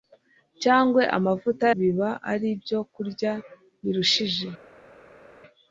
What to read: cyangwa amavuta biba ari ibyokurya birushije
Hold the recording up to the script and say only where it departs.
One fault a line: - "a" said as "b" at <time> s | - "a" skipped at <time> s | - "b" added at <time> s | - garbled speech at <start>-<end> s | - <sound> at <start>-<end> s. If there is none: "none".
none